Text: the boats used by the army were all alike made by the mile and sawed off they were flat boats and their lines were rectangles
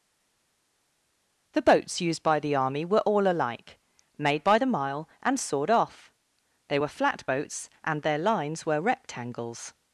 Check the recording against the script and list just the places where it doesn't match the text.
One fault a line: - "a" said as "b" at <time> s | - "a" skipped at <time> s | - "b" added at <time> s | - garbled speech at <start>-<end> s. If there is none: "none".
none